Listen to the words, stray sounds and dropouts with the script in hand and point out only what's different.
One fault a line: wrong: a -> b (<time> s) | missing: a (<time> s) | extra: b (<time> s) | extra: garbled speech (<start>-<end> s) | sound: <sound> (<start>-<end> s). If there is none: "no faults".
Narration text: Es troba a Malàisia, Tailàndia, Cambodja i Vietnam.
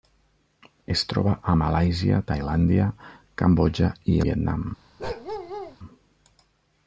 sound: bark (5.0-5.8 s)